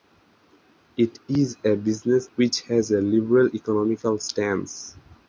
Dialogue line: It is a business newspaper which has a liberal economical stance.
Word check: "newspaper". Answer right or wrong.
wrong